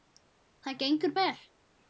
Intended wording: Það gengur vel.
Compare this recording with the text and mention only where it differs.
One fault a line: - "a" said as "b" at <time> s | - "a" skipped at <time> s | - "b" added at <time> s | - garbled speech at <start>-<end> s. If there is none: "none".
none